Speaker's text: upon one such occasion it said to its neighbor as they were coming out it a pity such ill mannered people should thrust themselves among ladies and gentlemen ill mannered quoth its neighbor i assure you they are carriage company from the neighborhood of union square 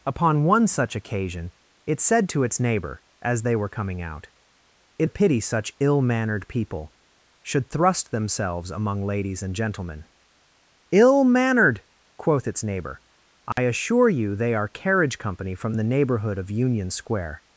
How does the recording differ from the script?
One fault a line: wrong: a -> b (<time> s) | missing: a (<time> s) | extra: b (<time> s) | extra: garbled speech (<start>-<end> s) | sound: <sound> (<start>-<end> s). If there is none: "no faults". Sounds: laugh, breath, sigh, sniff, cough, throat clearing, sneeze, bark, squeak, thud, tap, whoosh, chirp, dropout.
sound: dropout (13.5-13.6 s)